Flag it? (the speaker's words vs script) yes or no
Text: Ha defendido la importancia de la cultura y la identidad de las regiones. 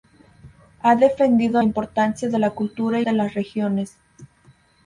yes